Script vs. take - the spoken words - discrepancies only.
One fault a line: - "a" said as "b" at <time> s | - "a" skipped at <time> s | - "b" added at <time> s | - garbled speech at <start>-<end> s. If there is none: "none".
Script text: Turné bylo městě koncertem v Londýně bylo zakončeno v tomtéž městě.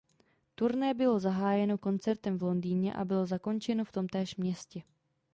- "městě" said as "zahájeno" at 1.2 s
- "a" added at 2.9 s